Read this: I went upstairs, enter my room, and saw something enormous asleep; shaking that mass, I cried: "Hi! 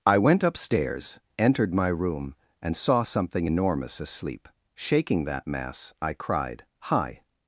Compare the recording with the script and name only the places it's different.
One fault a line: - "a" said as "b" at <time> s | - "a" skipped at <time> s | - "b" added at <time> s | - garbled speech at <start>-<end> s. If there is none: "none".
- "enter" said as "entered" at 1.4 s